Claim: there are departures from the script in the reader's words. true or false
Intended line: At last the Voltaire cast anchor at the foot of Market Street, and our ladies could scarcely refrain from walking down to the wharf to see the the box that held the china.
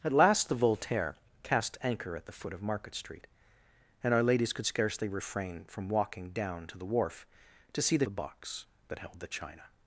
false